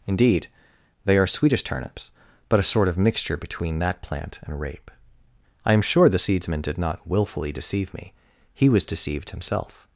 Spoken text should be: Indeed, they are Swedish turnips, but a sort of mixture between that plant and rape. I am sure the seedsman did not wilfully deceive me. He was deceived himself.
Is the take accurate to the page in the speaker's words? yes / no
yes